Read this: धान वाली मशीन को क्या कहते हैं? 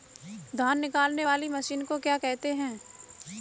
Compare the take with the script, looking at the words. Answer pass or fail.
fail